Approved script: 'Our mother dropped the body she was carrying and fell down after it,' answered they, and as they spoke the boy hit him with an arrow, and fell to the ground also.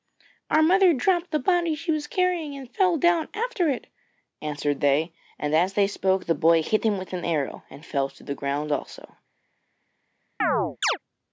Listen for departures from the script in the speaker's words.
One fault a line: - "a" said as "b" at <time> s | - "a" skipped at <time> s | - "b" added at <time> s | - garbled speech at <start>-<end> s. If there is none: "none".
none